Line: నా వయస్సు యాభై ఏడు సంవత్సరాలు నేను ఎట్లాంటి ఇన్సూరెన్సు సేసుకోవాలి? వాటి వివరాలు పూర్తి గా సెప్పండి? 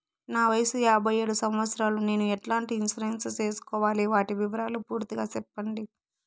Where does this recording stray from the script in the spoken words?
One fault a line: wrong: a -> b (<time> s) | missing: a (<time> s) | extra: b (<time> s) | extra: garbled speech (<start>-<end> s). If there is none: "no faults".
no faults